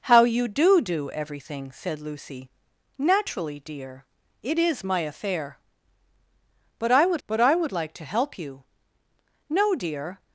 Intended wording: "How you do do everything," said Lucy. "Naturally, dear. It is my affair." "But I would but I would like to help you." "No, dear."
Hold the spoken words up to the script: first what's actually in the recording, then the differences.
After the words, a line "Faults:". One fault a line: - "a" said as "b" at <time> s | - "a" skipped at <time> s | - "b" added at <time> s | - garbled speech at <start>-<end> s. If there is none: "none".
"How you do do everything," said Lucy. "Naturally, dear. It is my affair." "But I would but I would like to help you." "No, dear."
Faults:
none